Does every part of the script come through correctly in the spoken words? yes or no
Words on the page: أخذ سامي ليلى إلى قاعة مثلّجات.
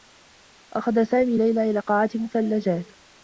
yes